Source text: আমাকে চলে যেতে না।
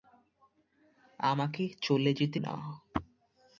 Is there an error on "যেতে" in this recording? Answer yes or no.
no